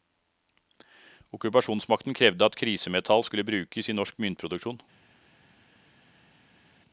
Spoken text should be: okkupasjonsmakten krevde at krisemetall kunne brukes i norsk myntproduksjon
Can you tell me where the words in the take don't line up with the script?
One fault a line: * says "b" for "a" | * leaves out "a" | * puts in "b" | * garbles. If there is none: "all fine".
* says "skulle" for "kunne"